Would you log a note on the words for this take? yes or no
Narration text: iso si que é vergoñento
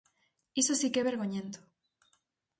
no